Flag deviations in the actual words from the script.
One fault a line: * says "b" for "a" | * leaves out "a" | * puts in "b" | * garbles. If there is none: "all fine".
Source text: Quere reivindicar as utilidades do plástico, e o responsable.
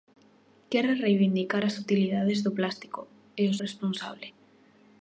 all fine